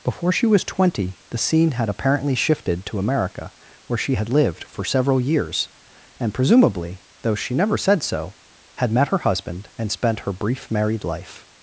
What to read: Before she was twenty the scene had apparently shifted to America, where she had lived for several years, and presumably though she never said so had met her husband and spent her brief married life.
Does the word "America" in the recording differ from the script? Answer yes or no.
no